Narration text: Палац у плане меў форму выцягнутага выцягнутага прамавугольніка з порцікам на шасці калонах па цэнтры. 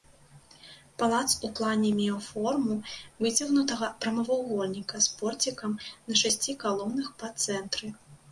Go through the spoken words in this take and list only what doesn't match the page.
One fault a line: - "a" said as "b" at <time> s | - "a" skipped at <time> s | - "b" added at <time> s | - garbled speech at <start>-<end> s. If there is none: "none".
- "выцягнутага" skipped at 3.9 s